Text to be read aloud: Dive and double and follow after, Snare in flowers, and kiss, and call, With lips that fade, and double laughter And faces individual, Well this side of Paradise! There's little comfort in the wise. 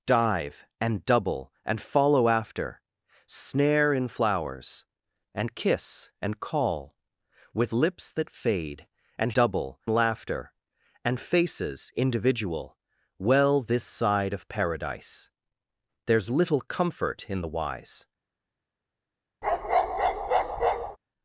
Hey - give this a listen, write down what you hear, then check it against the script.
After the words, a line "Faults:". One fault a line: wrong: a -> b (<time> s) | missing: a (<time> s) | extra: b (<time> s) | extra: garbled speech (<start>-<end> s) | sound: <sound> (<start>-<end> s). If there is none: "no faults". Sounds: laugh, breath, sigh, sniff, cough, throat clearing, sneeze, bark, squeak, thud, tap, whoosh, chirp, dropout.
Dive and double and follow after, Snare in flowers, and kiss, and call, With lips that fade, and double laughter And faces individual, Well this side of Paradise! There's little comfort in the wise.
Faults:
sound: bark (19.4-21.0 s)